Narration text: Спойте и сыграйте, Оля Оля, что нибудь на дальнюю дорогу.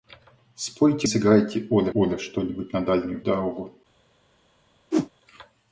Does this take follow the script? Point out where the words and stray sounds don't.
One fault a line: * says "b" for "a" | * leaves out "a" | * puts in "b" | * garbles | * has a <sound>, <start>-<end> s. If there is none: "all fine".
* has a whoosh, 4.9-5.1 s